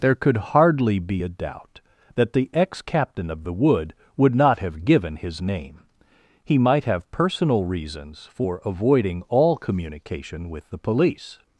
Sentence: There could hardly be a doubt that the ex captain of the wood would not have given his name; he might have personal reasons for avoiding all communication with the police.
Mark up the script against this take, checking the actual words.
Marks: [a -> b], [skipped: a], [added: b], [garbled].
There could hardly be a doubt that the ex captain of the wood would not have given his name; he might have personal reasons for avoiding all communication with the police.